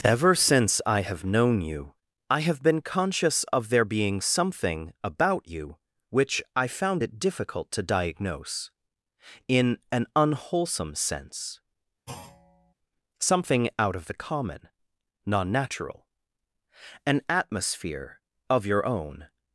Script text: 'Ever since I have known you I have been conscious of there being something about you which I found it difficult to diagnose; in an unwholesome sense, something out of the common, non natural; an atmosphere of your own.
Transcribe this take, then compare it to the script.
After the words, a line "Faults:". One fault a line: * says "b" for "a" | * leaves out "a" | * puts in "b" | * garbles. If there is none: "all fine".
'Ever since I have known you I have been conscious of there being something about you which I found it difficult to diagnose; in an unwholesome sense, something out of the common, non natural; an atmosphere of your own.
Faults:
all fine